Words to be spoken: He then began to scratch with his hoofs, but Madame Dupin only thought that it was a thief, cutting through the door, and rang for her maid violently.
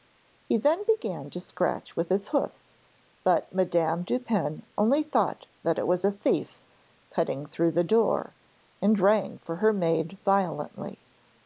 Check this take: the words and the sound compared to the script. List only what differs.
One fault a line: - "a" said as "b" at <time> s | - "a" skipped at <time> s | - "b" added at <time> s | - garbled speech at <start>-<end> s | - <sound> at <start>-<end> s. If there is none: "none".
none